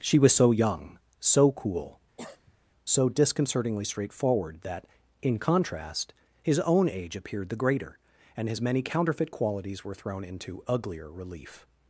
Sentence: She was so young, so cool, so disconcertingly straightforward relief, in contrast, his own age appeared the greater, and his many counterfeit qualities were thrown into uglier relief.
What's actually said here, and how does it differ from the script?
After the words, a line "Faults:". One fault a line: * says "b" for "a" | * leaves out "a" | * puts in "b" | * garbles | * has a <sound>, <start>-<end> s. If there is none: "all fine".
She was so young, so cool, so disconcertingly straightforward that, in contrast, his own age appeared the greater, and his many counterfeit qualities were thrown into uglier relief.
Faults:
* has a cough, 2.2-2.6 s
* says "that" for "relief"